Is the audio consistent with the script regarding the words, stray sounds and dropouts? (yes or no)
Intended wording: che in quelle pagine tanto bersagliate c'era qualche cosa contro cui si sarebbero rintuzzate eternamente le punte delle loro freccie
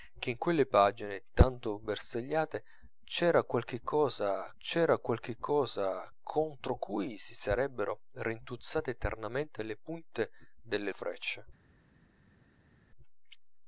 no